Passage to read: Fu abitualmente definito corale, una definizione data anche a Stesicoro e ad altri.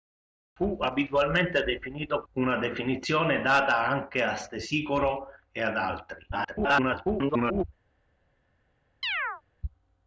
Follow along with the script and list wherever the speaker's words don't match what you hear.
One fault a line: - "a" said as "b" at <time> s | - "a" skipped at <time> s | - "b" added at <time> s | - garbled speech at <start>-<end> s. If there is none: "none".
- "corale" skipped at 2.2 s
- garbled speech at 6.3-7.6 s